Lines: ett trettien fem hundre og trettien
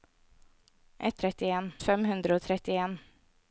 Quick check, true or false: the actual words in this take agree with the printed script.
true